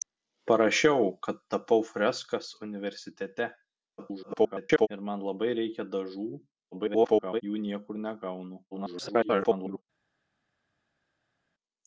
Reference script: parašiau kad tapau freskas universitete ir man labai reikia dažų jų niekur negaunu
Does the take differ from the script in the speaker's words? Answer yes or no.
yes